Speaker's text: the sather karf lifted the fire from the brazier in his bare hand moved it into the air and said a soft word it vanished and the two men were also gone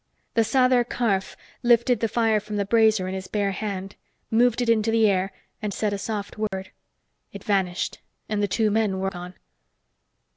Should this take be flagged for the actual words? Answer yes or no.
yes